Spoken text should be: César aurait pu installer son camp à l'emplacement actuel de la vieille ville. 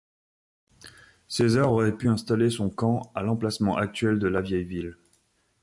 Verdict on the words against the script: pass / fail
pass